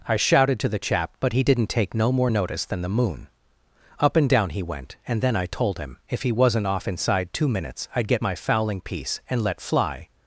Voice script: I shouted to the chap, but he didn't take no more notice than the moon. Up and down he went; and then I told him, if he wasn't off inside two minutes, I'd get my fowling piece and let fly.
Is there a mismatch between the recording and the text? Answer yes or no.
no